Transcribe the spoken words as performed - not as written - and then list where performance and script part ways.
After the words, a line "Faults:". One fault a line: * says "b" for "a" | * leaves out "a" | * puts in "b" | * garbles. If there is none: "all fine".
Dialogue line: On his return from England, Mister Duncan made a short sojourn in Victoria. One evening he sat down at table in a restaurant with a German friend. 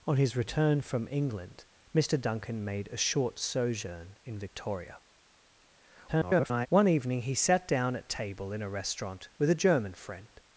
On his return from England, Mister Duncan made a short sojourn in Victoria. [garbled] One evening he sat down at table in a restaurant with a German friend.
Faults:
* garbles